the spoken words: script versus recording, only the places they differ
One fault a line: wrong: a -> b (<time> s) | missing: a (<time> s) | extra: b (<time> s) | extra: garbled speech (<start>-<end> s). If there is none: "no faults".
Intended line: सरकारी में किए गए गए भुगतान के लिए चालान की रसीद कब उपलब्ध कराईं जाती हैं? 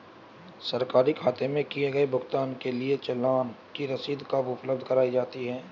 extra: खाते (1.1 s)
missing: गए (2.0 s)